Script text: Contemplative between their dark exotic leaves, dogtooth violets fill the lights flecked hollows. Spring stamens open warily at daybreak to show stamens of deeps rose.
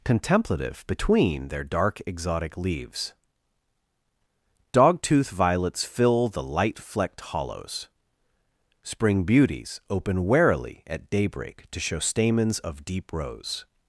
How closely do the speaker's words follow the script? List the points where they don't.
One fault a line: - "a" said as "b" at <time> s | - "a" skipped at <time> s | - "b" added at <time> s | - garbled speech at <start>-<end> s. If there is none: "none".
- "lights" said as "light" at 6.4 s
- "stamens" said as "beauties" at 9.2 s
- "deeps" said as "deep" at 12.9 s